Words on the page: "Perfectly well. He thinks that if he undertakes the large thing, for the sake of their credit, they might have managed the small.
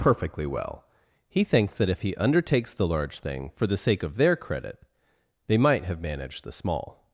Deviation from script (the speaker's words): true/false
false